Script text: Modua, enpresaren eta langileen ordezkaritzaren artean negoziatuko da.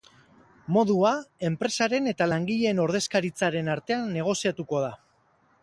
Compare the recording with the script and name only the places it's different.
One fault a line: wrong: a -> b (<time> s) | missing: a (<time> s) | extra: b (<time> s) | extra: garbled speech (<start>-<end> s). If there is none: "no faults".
no faults